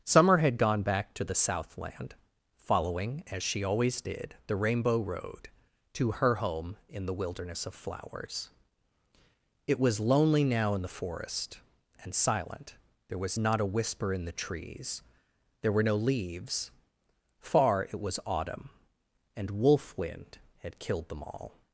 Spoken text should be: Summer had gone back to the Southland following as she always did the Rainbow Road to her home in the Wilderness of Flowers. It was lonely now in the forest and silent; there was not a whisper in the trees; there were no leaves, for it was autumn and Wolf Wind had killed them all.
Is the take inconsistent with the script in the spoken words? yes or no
yes